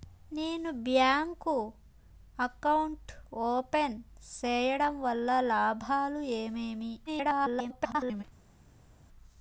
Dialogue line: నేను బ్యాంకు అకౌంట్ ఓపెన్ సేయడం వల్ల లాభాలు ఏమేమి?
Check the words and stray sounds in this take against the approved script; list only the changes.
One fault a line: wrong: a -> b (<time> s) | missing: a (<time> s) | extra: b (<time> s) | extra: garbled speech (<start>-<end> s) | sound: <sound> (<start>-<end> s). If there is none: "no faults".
extra: garbled speech (7.1-8.2 s)